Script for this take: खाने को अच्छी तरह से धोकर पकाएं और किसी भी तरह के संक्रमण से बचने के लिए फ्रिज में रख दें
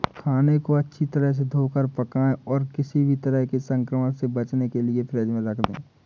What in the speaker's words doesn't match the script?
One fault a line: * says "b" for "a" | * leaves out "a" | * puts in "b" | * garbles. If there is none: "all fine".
all fine